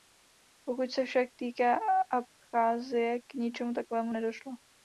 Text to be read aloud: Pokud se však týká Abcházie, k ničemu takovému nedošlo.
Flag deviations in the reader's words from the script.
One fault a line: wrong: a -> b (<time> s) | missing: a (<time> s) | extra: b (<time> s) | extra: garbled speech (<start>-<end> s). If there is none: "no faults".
no faults